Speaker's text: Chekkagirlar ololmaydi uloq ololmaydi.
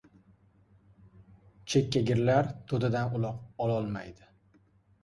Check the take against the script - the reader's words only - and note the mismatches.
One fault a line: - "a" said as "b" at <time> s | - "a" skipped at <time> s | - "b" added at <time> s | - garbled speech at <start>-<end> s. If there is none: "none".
- "ololmaydi" said as "to‘dadan" at 2.7 s